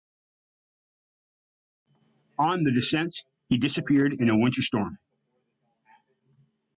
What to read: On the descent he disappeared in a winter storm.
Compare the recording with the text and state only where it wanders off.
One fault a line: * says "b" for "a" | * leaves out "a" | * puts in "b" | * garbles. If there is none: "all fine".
all fine